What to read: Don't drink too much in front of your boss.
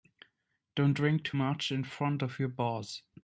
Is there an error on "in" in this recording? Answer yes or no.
no